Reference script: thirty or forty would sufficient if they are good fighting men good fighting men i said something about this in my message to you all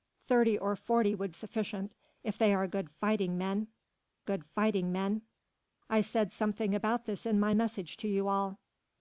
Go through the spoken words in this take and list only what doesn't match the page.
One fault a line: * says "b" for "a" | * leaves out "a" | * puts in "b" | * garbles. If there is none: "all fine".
all fine